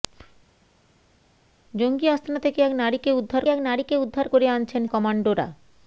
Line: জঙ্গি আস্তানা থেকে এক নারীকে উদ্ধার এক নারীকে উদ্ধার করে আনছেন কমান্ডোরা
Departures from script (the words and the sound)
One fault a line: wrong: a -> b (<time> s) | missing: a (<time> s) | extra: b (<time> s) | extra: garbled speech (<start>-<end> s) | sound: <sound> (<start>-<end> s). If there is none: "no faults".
no faults